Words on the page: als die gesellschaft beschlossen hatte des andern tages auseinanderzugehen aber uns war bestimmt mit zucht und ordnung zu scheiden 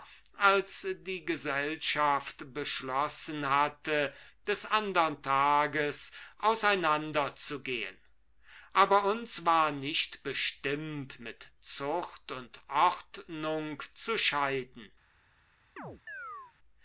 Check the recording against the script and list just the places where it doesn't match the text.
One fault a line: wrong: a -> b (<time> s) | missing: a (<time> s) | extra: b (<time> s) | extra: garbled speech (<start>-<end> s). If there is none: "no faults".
extra: nicht (9.7 s)